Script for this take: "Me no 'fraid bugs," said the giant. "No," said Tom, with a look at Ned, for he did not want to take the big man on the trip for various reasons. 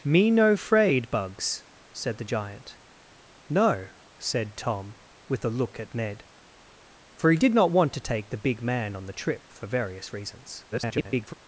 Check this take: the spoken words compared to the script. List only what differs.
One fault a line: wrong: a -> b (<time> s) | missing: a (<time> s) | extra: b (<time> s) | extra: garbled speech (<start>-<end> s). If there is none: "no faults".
extra: garbled speech (10.7-11.3 s)